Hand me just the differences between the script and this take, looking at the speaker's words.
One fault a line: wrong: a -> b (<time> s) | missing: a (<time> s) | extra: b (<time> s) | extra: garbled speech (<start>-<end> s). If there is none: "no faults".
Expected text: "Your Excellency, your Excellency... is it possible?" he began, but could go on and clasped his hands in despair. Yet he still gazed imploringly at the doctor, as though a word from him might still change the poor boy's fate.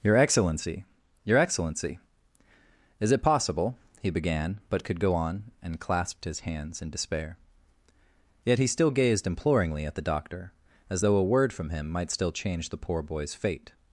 no faults